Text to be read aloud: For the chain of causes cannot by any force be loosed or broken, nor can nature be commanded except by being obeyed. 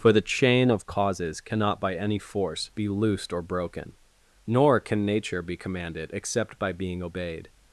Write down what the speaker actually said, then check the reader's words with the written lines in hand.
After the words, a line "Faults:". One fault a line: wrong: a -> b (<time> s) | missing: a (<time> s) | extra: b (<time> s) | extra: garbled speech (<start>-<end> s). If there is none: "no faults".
For the chain of causes cannot by any force be loosed or broken, nor can nature be commanded except by being obeyed.
Faults:
no faults